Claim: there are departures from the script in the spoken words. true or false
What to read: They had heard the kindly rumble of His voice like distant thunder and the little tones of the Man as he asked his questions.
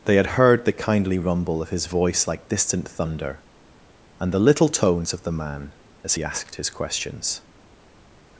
false